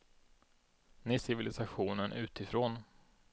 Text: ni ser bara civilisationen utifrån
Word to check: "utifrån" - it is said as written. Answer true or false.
true